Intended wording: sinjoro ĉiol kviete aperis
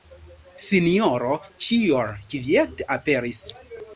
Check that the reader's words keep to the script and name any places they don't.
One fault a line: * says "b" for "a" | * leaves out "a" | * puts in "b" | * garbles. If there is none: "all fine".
all fine